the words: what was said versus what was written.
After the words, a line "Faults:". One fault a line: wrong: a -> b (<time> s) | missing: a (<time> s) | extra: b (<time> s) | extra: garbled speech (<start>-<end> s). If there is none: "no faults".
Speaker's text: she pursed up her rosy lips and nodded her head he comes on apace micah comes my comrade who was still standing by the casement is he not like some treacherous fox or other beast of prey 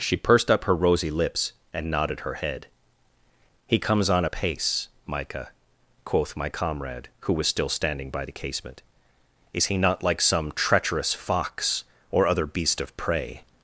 she pursed up her rosy lips and nodded her head he comes on apace micah quoth my comrade who was still standing by the casement is he not like some treacherous fox or other beast of prey
Faults:
wrong: comes -> quoth (6.0 s)